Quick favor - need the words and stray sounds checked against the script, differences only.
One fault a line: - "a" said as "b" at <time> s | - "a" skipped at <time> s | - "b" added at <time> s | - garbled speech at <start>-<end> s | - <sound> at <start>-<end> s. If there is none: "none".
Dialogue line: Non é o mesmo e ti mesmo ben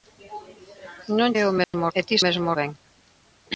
- dropout at 1.6-1.7 s